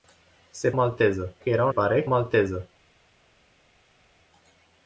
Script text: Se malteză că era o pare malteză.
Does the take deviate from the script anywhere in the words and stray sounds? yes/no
no